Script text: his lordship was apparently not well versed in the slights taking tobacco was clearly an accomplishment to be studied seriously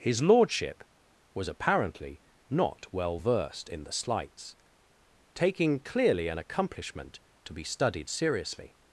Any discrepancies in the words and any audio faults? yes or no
yes